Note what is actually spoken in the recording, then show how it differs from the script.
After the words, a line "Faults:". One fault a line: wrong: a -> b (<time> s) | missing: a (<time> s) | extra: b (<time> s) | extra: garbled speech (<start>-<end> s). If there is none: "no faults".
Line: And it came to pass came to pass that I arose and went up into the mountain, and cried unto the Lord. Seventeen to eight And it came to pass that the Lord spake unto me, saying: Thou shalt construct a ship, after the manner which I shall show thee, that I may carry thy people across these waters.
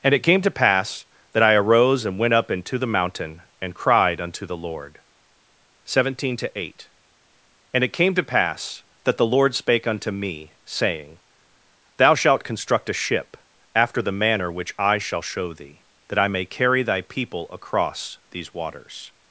And it came to pass that I arose and went up into the mountain, and cried unto the Lord. Seventeen to eight And it came to pass that the Lord spake unto me, saying: Thou shalt construct a ship, after the manner which I shall show thee, that I may carry thy people across these waters.
Faults:
missing: came to pass (1.1 s)